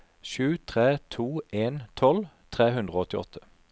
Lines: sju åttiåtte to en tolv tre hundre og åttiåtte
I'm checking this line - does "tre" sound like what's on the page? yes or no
yes